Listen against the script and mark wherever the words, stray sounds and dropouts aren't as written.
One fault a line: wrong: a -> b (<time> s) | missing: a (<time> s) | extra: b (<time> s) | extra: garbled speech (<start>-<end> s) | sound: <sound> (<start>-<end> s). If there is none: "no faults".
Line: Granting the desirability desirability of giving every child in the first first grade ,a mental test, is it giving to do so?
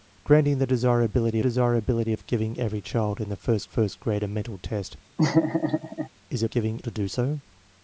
sound: laugh (5.2-6.1 s)